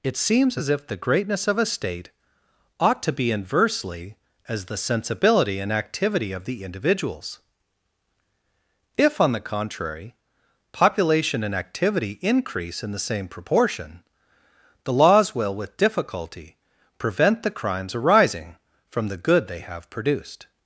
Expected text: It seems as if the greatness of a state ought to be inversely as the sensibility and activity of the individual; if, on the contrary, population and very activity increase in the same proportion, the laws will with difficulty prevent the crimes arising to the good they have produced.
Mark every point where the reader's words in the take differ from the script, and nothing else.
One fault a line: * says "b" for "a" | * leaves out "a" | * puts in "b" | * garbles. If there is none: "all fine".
* says "individuals" for "individual"
* leaves out "very"
* says "from" for "to"